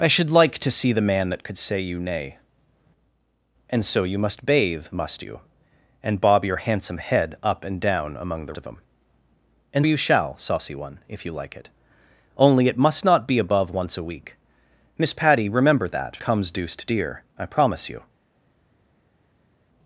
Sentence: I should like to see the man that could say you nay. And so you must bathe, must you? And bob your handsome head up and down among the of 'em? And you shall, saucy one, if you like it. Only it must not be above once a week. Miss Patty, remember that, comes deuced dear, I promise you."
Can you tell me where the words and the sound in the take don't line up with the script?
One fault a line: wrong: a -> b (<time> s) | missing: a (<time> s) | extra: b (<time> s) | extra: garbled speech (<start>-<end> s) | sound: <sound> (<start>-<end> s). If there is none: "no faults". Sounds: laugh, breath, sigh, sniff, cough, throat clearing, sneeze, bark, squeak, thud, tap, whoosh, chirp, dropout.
no faults